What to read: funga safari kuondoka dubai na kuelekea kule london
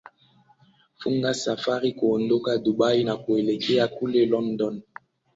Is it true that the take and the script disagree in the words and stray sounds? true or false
false